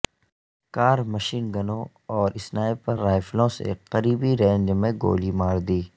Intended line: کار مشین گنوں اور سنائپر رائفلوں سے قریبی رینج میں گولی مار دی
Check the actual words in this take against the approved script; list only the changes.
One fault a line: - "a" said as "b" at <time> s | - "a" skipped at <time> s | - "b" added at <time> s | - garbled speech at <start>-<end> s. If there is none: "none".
none